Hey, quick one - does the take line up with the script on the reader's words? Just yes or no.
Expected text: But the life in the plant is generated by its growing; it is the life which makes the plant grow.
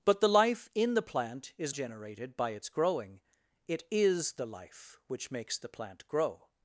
yes